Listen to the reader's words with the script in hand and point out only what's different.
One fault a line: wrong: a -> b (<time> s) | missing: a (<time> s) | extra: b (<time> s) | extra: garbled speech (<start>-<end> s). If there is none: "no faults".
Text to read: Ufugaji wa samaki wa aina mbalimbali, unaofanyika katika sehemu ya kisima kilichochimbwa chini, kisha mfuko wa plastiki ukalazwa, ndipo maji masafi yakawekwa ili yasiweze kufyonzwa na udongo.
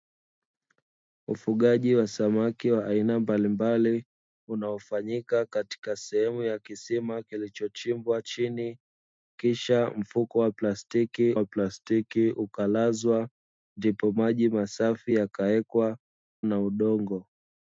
extra: wa plastiki (11.3 s)
missing: ili yasiweze kufyonzwa (16.0 s)